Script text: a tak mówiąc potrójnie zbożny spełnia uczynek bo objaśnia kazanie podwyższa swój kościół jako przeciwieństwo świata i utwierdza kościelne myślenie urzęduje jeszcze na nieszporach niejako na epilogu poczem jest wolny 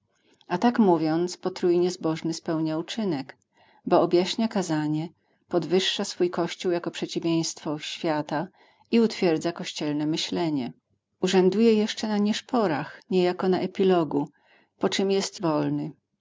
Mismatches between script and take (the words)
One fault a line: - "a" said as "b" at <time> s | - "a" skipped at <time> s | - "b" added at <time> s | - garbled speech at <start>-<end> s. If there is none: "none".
none